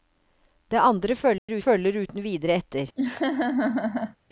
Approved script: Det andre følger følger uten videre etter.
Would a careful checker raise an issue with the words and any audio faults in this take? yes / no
yes